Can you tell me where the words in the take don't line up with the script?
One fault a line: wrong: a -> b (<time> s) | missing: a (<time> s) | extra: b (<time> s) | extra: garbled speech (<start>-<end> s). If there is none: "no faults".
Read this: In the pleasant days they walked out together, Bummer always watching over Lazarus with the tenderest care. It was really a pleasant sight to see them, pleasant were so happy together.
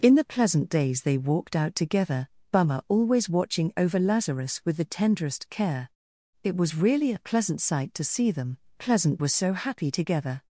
no faults